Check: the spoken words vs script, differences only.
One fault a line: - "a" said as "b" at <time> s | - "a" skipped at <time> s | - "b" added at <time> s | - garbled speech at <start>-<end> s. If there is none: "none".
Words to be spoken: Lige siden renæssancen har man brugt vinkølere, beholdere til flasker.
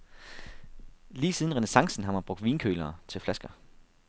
- "beholdere" skipped at 3.0 s